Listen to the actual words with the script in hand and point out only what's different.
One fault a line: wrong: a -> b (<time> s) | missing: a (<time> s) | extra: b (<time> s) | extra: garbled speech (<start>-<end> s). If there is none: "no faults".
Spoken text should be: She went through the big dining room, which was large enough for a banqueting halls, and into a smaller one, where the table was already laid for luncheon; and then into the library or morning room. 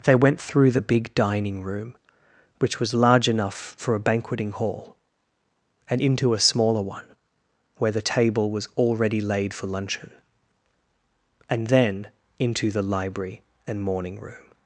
wrong: She -> They (0.0 s)
wrong: halls -> hall (4.5 s)
wrong: or -> and (13.7 s)